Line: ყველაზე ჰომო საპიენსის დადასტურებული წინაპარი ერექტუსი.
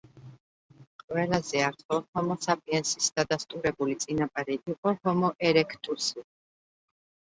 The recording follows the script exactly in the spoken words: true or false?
false